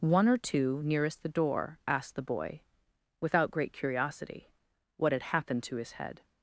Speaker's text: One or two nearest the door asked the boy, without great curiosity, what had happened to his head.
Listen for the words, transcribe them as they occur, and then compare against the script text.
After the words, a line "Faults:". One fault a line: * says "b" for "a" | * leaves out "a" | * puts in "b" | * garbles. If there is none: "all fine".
One or two nearest the door asked the boy, without great curiosity, what had happened to his head.
Faults:
all fine